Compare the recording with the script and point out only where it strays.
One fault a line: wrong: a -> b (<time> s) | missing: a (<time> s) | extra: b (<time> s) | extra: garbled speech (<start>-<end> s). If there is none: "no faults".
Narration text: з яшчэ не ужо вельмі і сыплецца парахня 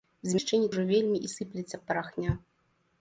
no faults